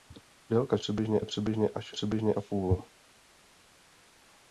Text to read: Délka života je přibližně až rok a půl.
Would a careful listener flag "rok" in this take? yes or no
yes